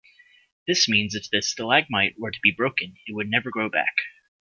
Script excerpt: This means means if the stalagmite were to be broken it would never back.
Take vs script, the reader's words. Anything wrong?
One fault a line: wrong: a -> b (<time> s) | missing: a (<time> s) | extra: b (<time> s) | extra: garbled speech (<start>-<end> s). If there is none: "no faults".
missing: means (1.1 s)
extra: grow (3.5 s)